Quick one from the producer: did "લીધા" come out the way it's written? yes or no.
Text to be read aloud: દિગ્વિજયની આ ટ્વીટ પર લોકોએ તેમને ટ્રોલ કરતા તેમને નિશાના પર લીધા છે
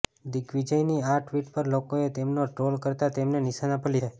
no